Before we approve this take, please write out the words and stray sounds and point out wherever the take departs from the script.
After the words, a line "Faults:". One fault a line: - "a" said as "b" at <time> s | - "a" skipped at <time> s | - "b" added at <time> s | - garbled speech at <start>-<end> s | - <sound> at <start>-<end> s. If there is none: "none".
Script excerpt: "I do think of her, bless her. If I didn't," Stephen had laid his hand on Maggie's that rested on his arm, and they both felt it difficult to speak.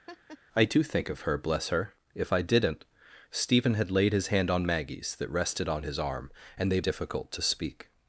"I do think of her, bless her. If I didn't," Stephen had laid his hand on Maggie's that rested on his arm, and they difficult to speak.
Faults:
- laugh at 0.1-0.4 s
- "both felt it" skipped at 6.8 s